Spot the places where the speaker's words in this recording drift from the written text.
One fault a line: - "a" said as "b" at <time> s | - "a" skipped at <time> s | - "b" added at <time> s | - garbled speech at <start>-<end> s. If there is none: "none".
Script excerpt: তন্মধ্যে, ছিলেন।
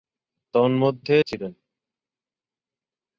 none